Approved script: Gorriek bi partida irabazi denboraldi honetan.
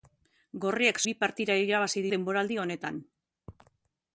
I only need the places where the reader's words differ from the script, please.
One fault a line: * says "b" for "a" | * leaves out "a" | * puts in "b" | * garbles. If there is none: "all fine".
all fine